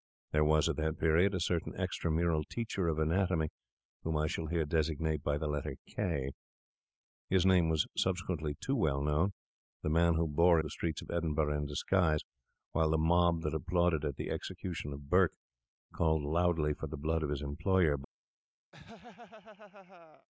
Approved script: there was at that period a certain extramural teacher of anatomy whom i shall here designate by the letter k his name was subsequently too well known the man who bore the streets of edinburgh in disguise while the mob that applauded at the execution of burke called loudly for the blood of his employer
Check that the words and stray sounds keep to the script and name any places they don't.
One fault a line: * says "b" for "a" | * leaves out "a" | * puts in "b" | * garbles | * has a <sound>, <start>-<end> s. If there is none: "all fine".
* has a laugh, 18.7-20.3 s